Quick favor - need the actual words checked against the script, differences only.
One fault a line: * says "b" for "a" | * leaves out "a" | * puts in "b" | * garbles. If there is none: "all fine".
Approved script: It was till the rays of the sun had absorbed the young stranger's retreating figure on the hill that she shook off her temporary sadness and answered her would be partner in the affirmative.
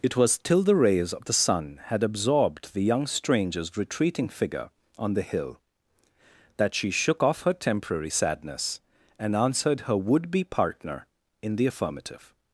all fine